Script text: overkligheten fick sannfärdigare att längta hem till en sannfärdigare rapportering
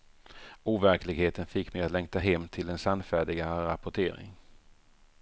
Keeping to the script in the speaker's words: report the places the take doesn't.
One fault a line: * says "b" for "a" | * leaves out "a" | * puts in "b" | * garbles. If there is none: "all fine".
* says "mig" for "sannfärdigare"